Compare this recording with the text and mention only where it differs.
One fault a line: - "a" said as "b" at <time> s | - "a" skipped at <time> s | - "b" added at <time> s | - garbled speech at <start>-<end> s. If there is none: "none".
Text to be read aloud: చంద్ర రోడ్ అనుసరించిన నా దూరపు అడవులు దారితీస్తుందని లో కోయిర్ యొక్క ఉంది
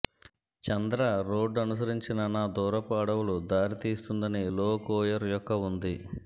none